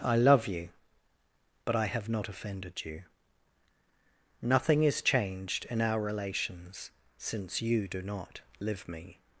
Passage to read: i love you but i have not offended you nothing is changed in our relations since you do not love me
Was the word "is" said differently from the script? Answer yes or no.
no